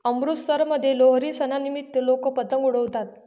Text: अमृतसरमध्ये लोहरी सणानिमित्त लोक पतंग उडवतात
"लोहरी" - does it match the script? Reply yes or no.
yes